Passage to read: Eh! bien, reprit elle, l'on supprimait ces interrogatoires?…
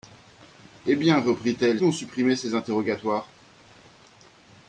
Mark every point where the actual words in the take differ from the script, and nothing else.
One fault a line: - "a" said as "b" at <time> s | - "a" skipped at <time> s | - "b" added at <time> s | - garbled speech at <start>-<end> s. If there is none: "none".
none